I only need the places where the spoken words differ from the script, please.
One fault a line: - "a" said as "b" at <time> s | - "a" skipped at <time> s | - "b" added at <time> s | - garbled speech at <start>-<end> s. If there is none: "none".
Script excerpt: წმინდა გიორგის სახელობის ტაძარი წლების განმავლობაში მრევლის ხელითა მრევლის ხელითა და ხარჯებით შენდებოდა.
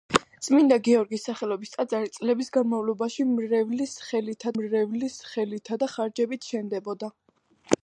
none